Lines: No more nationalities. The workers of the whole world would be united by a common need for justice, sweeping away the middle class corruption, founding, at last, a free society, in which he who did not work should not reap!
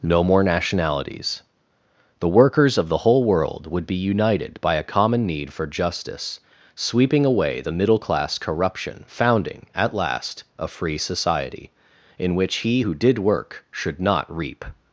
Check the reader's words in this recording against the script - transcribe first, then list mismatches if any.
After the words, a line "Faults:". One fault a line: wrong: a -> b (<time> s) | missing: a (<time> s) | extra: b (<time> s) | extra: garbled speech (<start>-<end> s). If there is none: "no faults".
No more nationalities. The workers of the whole world would be united by a common need for justice, sweeping away the middle class corruption, founding, at last, a free society, in which he who did work should not reap!
Faults:
missing: not (13.2 s)